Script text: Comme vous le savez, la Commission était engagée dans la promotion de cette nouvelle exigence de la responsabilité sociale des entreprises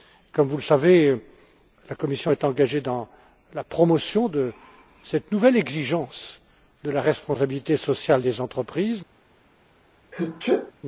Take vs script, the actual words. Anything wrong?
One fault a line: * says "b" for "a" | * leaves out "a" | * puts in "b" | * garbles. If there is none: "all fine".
* says "est" for "était"